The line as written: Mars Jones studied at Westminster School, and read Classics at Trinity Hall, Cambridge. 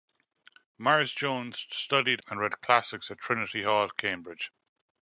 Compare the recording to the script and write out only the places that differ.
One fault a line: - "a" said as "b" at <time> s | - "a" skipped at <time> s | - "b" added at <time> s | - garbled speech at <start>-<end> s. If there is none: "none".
- "at Westminster School" skipped at 2.2 s